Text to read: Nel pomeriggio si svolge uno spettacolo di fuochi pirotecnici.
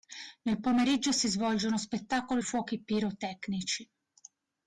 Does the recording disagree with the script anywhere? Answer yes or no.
yes